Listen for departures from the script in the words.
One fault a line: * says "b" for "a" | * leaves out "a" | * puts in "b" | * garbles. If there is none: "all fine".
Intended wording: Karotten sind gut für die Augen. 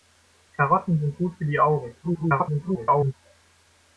* garbles